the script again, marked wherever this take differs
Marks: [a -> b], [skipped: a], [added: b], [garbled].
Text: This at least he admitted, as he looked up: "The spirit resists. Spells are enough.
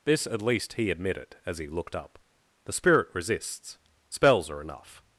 This at least he admitted, as he looked up: "The spirit resists. Spells are enough.